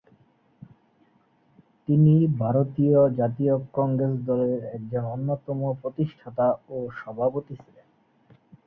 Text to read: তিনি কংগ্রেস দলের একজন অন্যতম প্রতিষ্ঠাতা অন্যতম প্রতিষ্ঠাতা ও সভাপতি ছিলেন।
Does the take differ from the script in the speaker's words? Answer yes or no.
yes